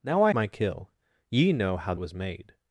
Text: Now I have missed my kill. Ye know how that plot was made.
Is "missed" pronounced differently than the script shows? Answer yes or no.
yes